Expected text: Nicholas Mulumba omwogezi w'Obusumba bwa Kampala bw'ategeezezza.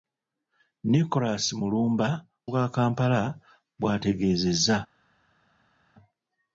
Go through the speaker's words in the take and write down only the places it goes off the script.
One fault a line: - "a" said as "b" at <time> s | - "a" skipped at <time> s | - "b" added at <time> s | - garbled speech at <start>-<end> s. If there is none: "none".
- "omwogezi w'Obusumba" skipped at 2.1 s